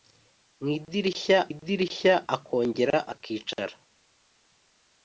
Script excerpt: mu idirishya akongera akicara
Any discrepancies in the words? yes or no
yes